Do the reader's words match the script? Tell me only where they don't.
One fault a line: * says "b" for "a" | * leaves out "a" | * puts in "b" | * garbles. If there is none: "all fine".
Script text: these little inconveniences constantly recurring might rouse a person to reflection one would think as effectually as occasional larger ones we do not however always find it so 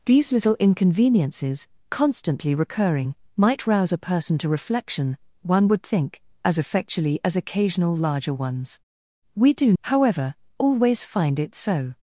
* leaves out "not"